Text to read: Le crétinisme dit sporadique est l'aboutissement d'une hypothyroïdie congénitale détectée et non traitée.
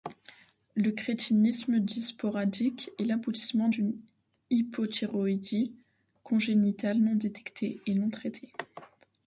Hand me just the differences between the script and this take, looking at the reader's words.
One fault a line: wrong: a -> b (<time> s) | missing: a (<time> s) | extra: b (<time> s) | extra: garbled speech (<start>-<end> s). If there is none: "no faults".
extra: non (7.0 s)